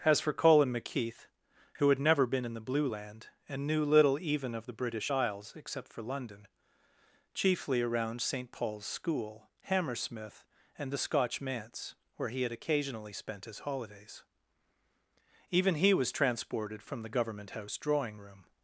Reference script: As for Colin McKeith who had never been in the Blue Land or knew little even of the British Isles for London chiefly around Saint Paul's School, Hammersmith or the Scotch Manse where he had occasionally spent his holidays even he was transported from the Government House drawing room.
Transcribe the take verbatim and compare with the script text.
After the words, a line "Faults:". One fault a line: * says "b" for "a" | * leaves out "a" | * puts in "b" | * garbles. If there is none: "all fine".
As for Colin McKeith who had never been in the Blue Land and knew little even of the British Isles except for London chiefly around Saint Paul's School, Hammersmith and the Scotch Manse where he had occasionally spent his holidays even he was transported from the Government House drawing room.
Faults:
* says "and" for "or"
* puts in "except"
* says "and" for "or"